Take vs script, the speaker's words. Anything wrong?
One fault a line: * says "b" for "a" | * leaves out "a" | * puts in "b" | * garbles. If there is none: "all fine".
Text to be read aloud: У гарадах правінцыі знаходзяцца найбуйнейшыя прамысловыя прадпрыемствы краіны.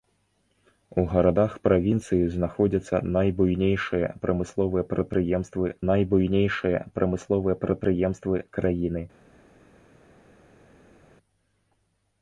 * puts in "найбуйнейшыя прамысловыя прадпрыемствы"